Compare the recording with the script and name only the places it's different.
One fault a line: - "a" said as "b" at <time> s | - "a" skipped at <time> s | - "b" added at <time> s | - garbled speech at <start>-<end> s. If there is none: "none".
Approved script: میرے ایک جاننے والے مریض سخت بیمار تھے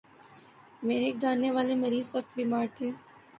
none